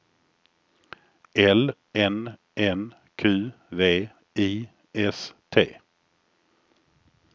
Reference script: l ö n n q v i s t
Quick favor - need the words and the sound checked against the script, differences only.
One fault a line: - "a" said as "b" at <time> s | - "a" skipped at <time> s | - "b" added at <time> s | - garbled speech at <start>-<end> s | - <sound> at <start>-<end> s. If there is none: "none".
- "ö" skipped at 1.8 s